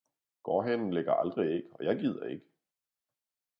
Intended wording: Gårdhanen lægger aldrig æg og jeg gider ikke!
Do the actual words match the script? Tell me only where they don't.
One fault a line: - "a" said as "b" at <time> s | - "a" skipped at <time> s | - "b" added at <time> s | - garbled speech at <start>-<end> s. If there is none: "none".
none